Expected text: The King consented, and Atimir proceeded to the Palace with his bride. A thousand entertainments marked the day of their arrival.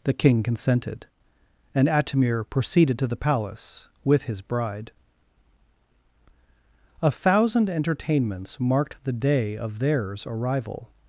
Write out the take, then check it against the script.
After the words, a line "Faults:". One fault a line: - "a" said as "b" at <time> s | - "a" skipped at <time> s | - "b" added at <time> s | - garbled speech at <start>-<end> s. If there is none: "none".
The King consented, and Atimir proceeded to the Palace with his bride. A thousand entertainments marked the day of theirs arrival.
Faults:
- "their" said as "theirs" at 9.8 s